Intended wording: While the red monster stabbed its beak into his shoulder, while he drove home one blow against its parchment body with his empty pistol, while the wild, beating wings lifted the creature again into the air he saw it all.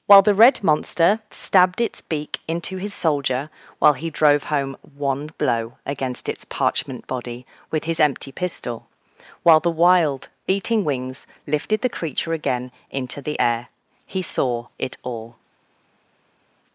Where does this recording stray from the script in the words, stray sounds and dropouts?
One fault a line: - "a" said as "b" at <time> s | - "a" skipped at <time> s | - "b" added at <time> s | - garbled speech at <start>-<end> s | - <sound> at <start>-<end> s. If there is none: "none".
- "shoulder" said as "soldier" at 2.9 s